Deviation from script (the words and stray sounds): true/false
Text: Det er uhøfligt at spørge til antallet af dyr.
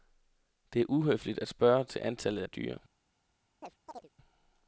true